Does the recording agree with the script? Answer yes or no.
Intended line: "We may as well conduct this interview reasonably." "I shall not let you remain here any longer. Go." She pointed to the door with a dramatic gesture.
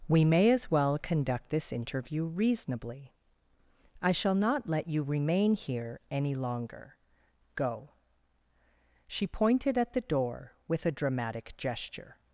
no